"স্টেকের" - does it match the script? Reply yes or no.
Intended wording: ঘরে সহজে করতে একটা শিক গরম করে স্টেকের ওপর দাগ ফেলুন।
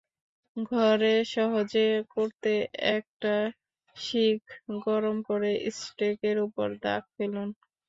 yes